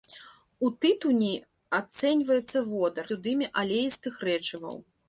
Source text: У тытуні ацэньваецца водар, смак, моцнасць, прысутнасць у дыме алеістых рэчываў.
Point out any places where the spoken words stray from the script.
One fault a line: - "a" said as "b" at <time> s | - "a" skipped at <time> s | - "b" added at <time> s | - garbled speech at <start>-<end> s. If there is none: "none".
- "смак моцнасць прысутнасць" skipped at 3.1 s